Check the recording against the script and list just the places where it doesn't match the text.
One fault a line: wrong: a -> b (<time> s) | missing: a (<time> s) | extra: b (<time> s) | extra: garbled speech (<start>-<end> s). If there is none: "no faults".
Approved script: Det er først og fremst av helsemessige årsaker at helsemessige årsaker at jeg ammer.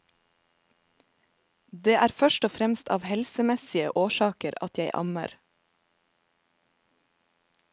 missing: helsemessige årsaker at (4.8 s)